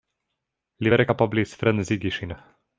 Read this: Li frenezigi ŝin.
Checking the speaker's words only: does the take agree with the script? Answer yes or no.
no